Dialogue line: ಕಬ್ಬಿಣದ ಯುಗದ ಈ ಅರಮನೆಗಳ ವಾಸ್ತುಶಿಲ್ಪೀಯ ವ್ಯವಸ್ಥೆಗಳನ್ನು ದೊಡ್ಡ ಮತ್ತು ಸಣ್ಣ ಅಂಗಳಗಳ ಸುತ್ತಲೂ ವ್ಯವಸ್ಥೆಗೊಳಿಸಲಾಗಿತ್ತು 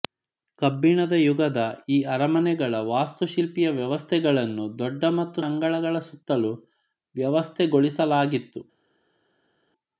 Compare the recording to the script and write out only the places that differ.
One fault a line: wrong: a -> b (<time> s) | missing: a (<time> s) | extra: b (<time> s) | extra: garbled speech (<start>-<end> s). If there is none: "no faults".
missing: ಸಣ್ಣ (5.4 s)